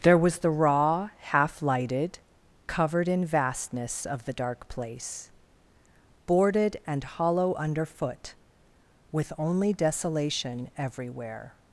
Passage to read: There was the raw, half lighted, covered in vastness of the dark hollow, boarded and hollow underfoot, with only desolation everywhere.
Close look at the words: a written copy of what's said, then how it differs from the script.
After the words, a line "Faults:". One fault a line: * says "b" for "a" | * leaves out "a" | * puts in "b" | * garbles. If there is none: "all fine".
There was the raw, half lighted, covered in vastness of the dark place, boarded and hollow underfoot, with only desolation everywhere.
Faults:
* says "place" for "hollow"